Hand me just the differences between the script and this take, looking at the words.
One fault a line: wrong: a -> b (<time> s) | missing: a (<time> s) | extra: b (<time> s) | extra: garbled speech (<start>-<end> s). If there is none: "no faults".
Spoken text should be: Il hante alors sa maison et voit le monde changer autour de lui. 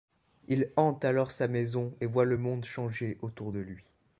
no faults